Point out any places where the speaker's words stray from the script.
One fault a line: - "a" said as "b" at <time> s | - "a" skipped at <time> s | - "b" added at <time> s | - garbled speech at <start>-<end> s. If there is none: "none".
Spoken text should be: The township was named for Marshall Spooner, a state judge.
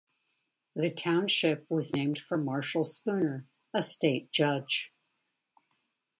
none